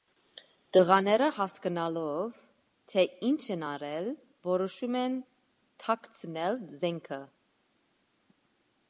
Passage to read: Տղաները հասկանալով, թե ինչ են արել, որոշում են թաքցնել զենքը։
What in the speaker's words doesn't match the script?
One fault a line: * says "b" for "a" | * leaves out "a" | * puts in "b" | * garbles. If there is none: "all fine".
all fine